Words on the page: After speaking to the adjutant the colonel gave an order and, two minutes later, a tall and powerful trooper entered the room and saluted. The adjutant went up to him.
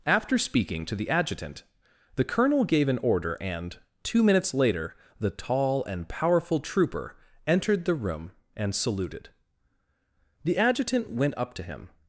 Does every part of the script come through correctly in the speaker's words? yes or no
no